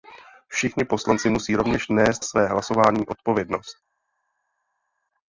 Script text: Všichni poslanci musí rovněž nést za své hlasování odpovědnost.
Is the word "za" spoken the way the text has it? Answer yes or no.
no